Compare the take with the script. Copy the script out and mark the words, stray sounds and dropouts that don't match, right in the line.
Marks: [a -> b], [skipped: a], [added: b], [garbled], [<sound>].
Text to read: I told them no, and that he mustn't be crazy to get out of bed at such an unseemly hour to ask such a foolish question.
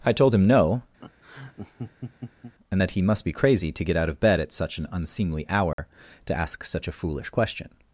I told [them -> him] no, [laugh] and that he [mustn't -> must] be crazy to get out of bed at such an unseemly hour [dropout] to ask such a foolish question.